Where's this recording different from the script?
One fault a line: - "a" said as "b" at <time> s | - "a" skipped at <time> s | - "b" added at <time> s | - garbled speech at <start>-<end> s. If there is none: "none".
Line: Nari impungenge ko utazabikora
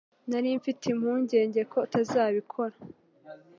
- "mfite" added at 0.6 s